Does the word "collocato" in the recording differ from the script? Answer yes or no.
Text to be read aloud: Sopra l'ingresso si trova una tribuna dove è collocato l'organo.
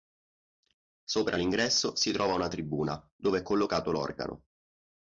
no